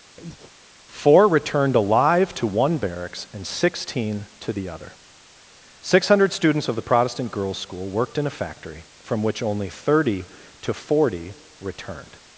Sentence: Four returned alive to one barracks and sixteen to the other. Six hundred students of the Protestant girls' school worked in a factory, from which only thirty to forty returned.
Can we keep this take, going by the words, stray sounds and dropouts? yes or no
no